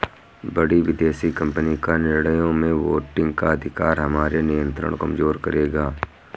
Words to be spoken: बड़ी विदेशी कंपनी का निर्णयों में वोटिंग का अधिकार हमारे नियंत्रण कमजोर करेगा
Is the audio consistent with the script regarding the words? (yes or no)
yes